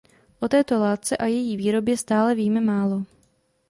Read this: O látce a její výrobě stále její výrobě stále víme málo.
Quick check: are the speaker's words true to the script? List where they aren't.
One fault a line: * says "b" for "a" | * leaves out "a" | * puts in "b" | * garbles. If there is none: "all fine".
* puts in "této"
* leaves out "její výrobě stále"